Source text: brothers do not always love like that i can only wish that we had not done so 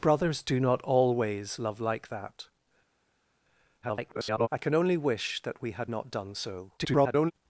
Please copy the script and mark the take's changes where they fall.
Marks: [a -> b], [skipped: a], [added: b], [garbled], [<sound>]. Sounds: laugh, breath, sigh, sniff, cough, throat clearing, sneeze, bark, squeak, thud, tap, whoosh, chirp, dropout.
brothers do not always love like that [garbled] i can only wish that we had not done so [garbled]